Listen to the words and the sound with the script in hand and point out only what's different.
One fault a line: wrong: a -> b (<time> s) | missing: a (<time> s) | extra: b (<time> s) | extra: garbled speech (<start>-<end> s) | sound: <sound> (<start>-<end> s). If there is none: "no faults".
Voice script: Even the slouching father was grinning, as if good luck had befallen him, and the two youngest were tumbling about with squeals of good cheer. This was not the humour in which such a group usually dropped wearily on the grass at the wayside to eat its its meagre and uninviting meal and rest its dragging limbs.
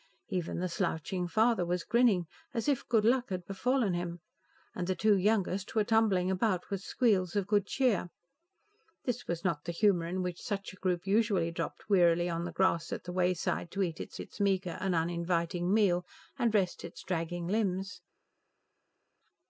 no faults